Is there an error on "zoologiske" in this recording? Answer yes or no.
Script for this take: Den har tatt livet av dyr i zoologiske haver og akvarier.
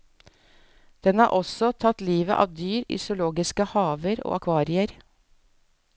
no